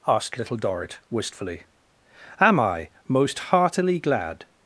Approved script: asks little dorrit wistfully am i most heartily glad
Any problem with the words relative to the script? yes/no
yes